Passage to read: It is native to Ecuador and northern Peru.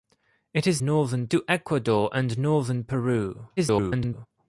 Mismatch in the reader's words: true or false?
true